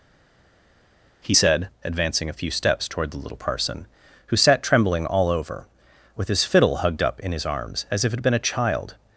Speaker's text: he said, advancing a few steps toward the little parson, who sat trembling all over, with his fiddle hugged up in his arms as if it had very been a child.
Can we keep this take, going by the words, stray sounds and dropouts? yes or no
no